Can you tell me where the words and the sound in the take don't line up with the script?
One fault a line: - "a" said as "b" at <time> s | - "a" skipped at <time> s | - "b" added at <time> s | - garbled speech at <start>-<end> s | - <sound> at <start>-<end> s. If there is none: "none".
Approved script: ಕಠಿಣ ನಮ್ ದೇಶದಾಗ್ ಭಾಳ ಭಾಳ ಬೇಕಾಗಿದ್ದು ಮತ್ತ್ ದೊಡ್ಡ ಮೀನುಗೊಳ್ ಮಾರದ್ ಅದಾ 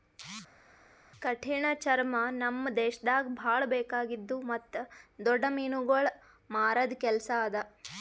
- "ಚರ್ಮ" added at 1.8 s
- "ಭಾಳ" skipped at 3.6 s
- "ಕೆಲಸ" added at 7.0 s